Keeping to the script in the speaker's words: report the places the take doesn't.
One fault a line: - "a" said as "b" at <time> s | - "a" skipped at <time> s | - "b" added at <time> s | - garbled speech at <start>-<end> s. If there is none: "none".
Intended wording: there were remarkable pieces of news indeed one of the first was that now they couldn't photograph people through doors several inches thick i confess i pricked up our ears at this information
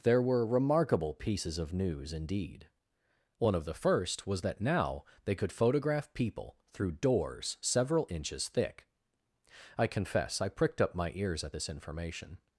- "couldn't" said as "could" at 5.3 s
- "our" said as "my" at 10.9 s